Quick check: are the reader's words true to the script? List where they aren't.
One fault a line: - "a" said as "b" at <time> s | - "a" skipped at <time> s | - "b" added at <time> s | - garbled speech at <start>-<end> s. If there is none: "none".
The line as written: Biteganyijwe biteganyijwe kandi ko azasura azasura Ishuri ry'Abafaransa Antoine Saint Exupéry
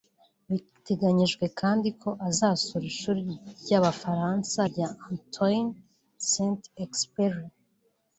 - "biteganyijwe" skipped at 1.4 s
- "azasura" skipped at 2.9 s
- "rya" added at 4.7 s